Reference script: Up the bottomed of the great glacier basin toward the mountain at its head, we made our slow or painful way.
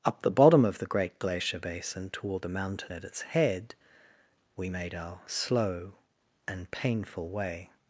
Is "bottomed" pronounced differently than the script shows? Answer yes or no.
yes